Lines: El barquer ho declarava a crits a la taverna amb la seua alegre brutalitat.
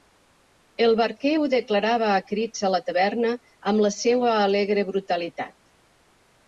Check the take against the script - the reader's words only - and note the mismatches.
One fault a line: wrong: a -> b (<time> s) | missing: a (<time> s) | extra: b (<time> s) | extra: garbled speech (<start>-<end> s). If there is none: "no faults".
no faults